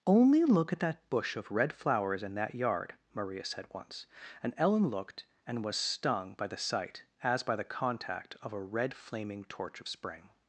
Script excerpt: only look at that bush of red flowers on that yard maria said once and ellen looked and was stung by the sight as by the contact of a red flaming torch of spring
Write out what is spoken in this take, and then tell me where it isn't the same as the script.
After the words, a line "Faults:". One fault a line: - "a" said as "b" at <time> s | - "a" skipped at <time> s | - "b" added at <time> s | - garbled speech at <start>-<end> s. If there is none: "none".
only look at that bush of red flowers in that yard maria said once and ellen looked and was stung by the sight as by the contact of a red flaming torch of spring
Faults:
- "on" said as "in" at 2.2 s